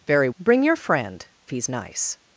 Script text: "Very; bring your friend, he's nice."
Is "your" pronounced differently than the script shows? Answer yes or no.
no